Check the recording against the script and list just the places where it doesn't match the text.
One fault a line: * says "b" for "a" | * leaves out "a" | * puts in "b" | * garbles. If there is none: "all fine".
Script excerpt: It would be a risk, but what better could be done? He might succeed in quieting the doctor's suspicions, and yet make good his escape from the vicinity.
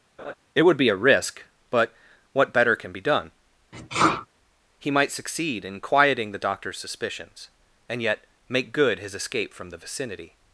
* says "can" for "could"